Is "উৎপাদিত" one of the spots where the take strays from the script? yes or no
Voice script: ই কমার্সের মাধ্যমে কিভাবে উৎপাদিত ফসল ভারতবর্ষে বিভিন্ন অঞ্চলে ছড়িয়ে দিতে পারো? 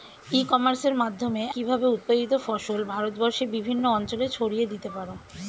no